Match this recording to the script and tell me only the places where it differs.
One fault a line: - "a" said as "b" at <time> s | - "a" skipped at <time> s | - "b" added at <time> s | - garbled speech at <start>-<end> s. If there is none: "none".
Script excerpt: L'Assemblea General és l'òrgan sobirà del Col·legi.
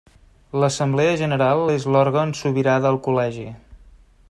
none